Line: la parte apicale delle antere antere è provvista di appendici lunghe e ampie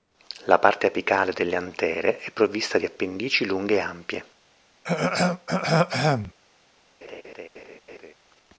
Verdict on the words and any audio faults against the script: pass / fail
fail